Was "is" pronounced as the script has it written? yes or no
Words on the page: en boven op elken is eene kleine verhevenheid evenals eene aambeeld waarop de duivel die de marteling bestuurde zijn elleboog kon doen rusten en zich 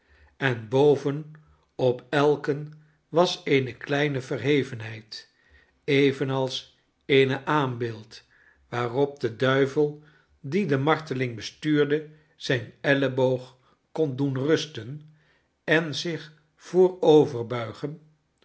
no